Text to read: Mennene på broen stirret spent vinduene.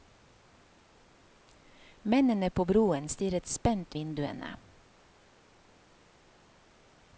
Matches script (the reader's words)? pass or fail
pass